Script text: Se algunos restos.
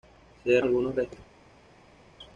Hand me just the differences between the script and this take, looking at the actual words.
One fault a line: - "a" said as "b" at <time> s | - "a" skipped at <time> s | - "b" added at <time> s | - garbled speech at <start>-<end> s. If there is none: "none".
none